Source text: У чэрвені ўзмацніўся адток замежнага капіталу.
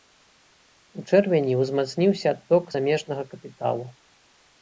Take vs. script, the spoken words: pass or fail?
pass